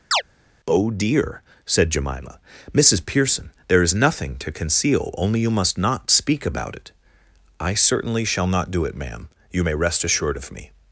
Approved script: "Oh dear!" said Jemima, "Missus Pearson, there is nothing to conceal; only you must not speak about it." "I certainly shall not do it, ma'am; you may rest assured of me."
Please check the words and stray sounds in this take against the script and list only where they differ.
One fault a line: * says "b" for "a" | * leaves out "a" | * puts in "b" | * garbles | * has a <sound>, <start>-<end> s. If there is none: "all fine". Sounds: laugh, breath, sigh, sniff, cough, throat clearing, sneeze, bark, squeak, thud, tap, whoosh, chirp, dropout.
* has a chirp, 0.1-0.2 s